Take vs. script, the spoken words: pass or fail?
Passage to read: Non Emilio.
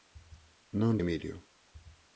pass